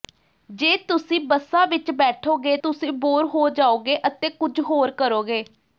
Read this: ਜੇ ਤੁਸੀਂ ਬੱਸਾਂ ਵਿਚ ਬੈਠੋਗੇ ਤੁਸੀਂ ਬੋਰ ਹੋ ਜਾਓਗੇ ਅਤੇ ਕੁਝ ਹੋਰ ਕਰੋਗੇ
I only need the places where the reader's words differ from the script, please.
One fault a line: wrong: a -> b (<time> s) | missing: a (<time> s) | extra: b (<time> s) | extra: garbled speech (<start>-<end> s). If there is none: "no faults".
no faults